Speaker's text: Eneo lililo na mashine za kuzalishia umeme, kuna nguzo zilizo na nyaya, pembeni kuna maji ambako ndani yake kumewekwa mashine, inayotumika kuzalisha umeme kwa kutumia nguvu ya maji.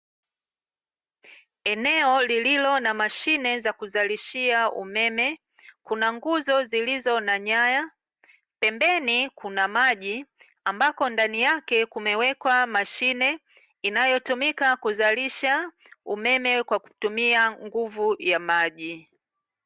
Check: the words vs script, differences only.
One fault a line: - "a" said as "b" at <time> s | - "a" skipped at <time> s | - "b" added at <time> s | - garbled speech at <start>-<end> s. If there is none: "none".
none